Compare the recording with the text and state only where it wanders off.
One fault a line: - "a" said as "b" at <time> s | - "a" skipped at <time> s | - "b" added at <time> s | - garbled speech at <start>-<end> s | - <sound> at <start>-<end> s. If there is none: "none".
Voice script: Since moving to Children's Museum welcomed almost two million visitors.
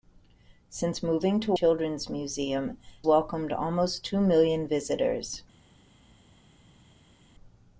none